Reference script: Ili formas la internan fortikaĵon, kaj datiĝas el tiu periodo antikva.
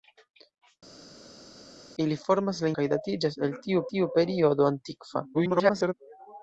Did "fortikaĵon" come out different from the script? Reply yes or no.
yes